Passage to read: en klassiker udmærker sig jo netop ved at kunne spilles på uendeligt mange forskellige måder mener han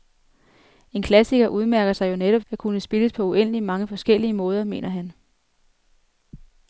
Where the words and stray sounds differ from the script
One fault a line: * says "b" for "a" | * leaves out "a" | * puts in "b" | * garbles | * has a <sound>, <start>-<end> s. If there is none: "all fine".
* leaves out "ved"